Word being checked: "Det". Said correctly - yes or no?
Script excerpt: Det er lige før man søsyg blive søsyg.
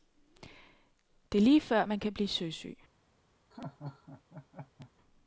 yes